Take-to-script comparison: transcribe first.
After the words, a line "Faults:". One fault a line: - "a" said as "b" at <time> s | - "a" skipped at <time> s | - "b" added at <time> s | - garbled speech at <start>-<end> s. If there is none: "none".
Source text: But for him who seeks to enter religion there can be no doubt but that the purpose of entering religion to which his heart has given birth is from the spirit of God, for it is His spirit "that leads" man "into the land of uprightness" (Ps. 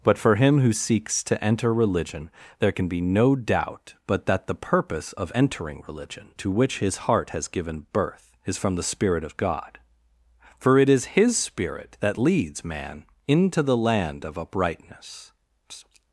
But for him who seeks to enter religion there can be no doubt but that the purpose of entering religion to which his heart has given birth is from the spirit of God, for it is His spirit "that leads" man "into the land of uprightness.
Faults:
- "Ps" skipped at 15.3 s